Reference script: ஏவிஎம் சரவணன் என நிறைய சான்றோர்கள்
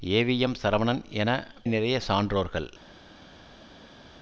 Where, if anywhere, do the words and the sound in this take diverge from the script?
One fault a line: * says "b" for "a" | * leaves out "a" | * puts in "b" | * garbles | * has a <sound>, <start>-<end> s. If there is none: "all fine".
all fine